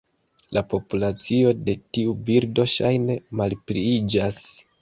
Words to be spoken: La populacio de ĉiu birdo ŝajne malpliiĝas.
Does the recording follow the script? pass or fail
fail